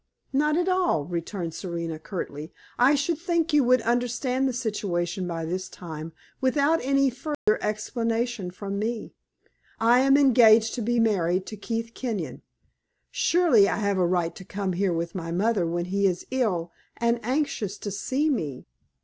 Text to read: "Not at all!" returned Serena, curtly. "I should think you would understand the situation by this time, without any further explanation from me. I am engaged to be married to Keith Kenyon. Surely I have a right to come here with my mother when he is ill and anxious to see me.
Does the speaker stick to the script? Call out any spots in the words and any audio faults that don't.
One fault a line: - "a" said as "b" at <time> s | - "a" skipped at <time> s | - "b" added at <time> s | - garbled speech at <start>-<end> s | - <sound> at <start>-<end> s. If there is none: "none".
- dropout at 7.3-7.5 s